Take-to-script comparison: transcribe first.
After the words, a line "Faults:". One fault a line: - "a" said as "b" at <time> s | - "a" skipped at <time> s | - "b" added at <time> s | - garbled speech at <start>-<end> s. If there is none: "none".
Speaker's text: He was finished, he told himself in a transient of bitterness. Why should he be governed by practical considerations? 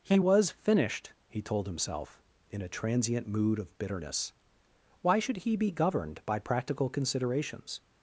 He was finished, he told himself in a transient mood of bitterness. Why should he be governed by practical considerations?
Faults:
- "mood" added at 3.3 s